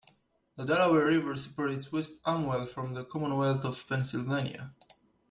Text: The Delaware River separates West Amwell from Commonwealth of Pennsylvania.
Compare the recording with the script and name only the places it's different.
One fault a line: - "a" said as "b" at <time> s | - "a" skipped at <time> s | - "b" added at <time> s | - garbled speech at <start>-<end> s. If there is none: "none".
- "the" added at 2.9 s